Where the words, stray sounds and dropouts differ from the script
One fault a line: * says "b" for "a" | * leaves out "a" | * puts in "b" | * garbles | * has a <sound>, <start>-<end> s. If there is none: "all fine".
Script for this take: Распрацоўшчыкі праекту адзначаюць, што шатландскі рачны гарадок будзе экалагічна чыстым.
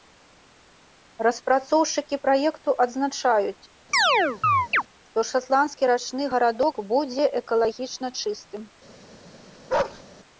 * has a chirp, 3.9-4.8 s
* has a bark, 9.7-10.0 s